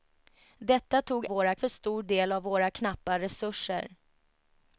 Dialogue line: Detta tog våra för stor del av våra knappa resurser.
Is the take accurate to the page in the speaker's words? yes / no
yes